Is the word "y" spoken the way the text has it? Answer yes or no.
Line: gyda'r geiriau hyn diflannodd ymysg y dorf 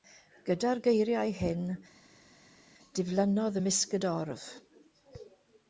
yes